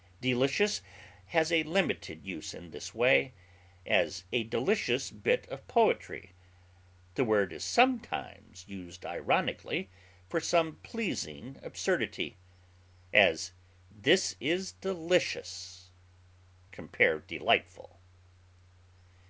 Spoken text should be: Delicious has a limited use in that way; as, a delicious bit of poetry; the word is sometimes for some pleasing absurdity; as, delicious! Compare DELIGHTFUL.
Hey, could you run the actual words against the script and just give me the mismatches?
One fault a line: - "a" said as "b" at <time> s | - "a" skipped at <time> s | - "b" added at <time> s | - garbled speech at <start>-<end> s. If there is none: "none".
- "that" said as "this" at 2.7 s
- "used ironically" added at 8.7 s
- "this is" added at 13.9 s